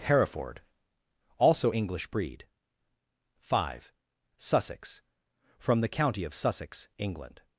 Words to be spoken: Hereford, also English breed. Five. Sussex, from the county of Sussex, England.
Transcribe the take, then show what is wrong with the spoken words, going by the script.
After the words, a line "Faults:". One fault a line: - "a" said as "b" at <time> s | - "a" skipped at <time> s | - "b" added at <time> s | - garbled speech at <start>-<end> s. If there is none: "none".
Hereford, also English breed. Five. Sussex, from the county of Sussex, England.
Faults:
none